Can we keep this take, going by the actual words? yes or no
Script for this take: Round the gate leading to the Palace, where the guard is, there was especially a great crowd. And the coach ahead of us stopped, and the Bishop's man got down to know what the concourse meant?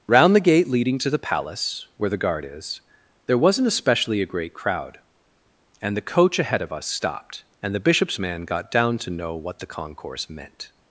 no